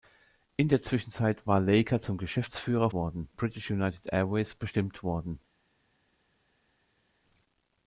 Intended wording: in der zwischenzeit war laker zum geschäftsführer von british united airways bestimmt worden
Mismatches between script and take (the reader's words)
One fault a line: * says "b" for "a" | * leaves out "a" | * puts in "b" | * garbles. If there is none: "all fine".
* says "worden" for "von"